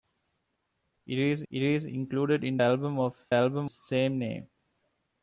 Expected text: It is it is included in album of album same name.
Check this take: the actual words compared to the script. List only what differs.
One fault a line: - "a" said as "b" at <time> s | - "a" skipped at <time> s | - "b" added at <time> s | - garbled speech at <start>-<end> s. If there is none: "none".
none